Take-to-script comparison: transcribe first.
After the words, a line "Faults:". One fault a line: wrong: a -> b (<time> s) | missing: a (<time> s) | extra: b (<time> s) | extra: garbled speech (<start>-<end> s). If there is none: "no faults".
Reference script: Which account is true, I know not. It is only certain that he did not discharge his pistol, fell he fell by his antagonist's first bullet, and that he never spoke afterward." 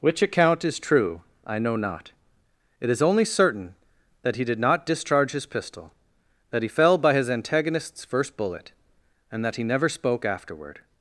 Which account is true, I know not. It is only certain that he did not discharge his pistol, that he fell by his antagonist's first bullet, and that he never spoke afterward."
Faults:
wrong: fell -> that (6.5 s)